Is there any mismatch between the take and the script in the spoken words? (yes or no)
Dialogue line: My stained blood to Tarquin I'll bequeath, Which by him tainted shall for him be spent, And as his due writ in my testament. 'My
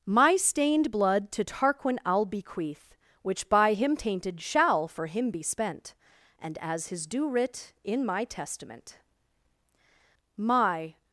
no